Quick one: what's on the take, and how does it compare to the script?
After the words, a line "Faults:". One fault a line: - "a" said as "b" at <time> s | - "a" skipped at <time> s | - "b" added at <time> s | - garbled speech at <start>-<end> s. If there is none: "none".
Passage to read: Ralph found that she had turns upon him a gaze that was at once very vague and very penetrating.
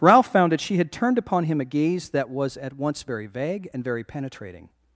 Ralph found that she had turned upon him a gaze that was at once very vague and very penetrating.
Faults:
- "turns" said as "turned" at 0.9 s